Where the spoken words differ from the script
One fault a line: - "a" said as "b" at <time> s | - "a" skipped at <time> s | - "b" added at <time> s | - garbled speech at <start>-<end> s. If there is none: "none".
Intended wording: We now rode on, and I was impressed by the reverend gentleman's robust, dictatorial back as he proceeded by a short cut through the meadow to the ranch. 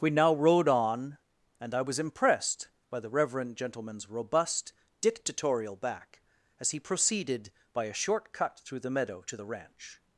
none